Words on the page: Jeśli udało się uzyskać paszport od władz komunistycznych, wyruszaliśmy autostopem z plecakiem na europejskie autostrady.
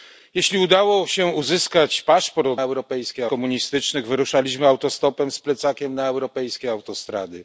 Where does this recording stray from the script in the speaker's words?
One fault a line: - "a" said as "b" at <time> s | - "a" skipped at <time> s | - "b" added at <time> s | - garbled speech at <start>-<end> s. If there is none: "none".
- "władz" said as "europejskie" at 2.6 s